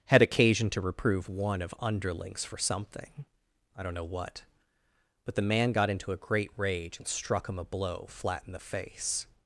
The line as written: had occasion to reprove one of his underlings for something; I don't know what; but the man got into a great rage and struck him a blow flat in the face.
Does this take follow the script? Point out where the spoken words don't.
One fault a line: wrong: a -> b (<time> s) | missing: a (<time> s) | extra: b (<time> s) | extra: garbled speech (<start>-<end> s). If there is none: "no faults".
missing: his (1.7 s)